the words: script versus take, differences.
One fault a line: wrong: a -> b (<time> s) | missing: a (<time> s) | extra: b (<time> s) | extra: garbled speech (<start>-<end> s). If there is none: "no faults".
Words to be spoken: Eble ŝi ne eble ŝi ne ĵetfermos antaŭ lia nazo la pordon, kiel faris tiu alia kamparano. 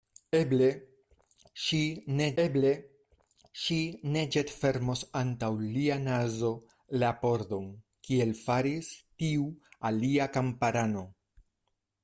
no faults